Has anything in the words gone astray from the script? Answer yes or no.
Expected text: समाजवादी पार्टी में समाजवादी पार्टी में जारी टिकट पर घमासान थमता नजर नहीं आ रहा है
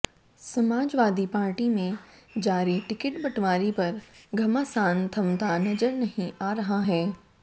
yes